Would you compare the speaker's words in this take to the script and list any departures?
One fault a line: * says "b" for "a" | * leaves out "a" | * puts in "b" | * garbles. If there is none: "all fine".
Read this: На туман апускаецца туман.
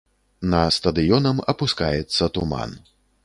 * says "стадыёнам" for "туман"